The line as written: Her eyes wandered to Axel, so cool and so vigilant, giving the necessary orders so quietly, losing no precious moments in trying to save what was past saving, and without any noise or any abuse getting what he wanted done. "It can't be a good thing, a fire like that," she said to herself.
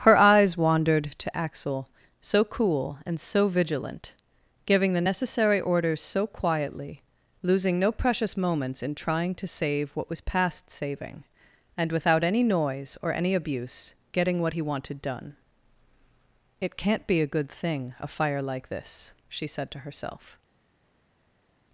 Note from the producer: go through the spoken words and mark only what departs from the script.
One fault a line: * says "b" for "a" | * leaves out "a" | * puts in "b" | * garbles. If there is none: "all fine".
* says "this" for "that"